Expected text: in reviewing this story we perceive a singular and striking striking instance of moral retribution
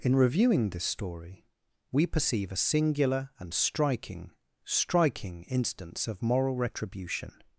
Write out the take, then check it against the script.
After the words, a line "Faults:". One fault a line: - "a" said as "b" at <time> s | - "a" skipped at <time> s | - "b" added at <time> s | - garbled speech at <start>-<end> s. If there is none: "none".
in reviewing this story we perceive a singular and striking striking instance of moral retribution
Faults:
none